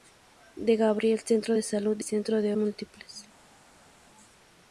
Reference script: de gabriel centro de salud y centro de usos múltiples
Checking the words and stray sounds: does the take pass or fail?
fail